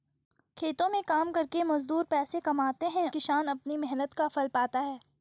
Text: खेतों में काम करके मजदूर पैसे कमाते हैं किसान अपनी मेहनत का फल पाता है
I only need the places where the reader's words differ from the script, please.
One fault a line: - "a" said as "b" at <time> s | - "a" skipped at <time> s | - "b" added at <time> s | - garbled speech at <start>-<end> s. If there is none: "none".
none